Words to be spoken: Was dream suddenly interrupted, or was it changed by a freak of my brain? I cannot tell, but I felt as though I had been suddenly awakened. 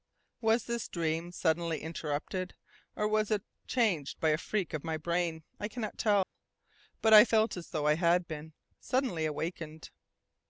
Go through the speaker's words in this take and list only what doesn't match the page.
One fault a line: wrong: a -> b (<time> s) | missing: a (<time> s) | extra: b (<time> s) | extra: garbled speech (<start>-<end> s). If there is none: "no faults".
extra: this (0.7 s)